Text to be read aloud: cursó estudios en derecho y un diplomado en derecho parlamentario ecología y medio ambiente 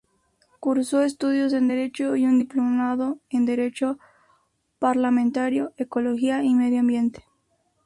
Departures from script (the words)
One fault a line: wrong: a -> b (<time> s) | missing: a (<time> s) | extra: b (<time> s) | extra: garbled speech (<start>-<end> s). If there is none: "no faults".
no faults